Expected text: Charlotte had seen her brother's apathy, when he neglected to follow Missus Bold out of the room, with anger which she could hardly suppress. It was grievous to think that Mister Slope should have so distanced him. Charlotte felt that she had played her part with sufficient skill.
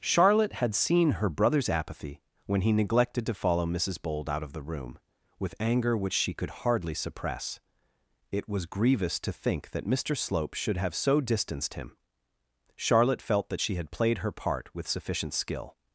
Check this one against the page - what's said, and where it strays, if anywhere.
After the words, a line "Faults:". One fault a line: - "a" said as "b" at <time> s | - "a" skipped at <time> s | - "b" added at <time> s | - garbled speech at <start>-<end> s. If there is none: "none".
Charlotte had seen her brother's apathy, when he neglected to follow Missus Bold out of the room, with anger which she could hardly suppress. It was grievous to think that Mister Slope should have so distanced him. Charlotte felt that she had played her part with sufficient skill.
Faults:
none